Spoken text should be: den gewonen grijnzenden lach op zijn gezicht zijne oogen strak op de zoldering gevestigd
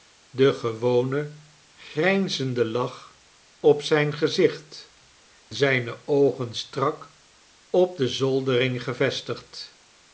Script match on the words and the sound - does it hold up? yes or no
yes